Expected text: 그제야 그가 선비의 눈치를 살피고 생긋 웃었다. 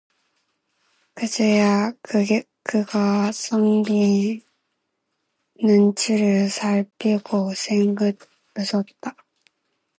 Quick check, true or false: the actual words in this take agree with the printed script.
true